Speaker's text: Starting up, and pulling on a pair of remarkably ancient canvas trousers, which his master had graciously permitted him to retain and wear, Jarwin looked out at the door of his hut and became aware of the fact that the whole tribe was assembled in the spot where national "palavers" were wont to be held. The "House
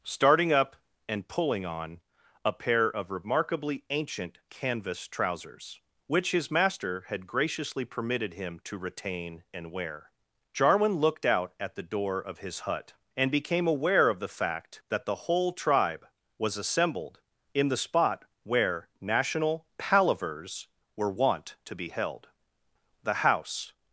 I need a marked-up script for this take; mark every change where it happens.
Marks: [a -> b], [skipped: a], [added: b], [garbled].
Starting up, and pulling on a pair of remarkably ancient canvas trousers, which his master had graciously permitted him to retain and wear, Jarwin looked out at the door of his hut and became aware of the fact that the whole tribe was assembled in the spot where national "palavers" were wont to be held. The "House